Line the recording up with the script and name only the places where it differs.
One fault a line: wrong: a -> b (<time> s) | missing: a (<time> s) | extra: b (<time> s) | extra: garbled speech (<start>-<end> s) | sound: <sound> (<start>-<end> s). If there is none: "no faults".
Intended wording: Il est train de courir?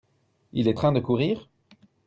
no faults